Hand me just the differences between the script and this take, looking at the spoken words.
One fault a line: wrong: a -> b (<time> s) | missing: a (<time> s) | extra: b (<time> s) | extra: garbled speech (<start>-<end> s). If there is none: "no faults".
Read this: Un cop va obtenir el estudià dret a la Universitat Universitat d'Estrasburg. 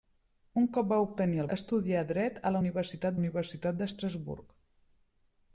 no faults